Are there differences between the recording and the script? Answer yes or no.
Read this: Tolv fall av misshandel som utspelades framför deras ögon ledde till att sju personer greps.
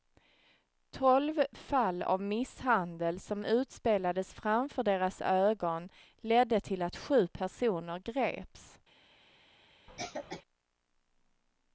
no